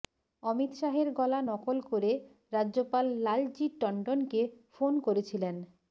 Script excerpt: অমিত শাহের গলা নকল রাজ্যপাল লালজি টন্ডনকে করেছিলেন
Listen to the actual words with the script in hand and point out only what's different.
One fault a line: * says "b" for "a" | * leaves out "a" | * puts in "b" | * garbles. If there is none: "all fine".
* puts in "করে"
* puts in "ফোন"